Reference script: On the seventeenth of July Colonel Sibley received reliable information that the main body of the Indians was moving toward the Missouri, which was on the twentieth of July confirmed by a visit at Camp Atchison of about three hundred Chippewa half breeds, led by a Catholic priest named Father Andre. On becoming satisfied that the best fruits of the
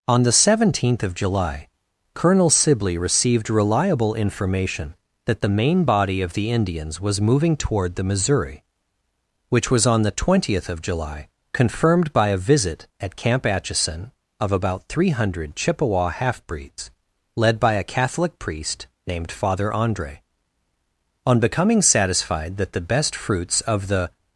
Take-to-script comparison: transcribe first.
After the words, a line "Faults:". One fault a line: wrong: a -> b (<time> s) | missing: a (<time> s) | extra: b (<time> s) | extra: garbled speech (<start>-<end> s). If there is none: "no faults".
On the seventeenth of July Colonel Sibley received reliable information that the main body of the Indians was moving toward the Missouri, which was on the twentieth of July confirmed by a visit at Camp Atchison of about three hundred Chippewa half breeds, led by a Catholic priest named Father Andre. On becoming satisfied that the best fruits of the
Faults:
no faults